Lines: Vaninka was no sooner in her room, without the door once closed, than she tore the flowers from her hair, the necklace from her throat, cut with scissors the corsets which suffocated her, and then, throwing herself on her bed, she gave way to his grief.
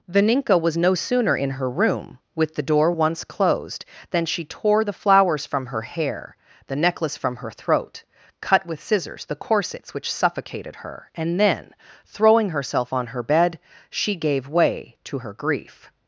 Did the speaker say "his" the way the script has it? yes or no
no